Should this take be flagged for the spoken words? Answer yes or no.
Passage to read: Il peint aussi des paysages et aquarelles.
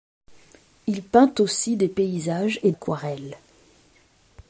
no